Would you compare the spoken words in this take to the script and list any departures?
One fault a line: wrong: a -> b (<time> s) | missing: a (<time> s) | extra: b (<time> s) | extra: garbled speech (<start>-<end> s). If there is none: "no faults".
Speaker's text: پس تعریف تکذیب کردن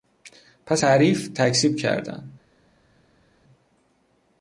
no faults